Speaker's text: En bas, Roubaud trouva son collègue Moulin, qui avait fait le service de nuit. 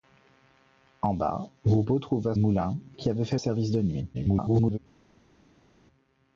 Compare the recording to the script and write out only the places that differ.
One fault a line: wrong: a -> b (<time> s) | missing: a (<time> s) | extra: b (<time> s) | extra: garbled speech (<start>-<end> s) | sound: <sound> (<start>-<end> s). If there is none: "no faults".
missing: son collègue (2.3 s)
missing: le (3.4 s)
extra: garbled speech (4.1-4.8 s)